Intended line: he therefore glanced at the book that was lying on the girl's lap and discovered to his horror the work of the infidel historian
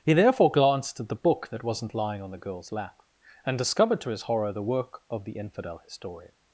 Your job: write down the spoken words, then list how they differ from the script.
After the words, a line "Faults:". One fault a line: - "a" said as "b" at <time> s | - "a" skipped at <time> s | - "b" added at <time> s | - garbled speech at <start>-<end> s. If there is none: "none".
he therefore glanced at the book that wasn't lying on the girl's lap and discovered to his horror the work of the infidel historian
Faults:
- "was" said as "wasn't" at 1.6 s